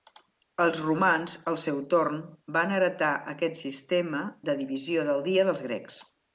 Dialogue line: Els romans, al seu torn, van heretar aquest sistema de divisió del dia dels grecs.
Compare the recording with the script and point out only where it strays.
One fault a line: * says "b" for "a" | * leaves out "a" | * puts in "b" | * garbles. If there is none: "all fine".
all fine